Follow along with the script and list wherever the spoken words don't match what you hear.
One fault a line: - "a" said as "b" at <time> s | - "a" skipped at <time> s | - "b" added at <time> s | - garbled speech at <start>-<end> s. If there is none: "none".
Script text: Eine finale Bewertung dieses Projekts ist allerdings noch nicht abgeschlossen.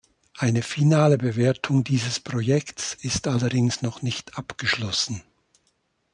none